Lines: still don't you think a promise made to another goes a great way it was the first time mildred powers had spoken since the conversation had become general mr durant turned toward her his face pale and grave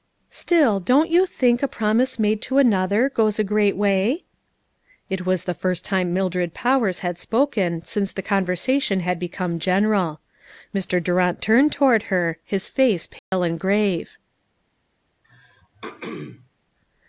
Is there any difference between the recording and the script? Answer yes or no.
no